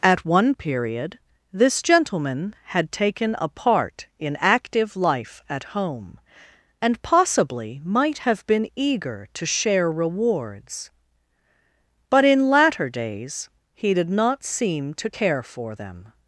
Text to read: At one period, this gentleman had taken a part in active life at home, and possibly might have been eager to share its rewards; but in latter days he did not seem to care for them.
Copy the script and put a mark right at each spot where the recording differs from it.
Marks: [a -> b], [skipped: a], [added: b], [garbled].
At one period, this gentleman had taken a part in active life at home, and possibly might have been eager to share [skipped: its] rewards; but in latter days he did not seem to care for them.